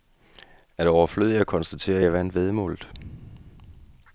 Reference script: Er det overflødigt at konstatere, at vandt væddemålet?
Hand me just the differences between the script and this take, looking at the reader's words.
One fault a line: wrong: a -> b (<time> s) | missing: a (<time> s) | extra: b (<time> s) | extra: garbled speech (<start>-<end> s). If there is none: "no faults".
extra: jeg (2.0 s)